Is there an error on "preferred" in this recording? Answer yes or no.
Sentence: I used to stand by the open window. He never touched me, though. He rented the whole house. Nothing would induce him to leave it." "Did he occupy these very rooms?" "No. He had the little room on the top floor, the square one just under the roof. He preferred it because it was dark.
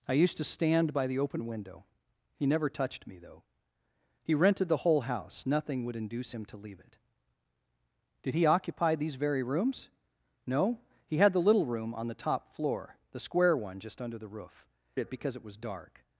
yes